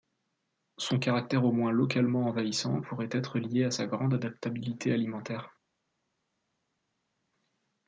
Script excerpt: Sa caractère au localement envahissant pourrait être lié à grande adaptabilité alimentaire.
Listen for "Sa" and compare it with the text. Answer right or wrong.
wrong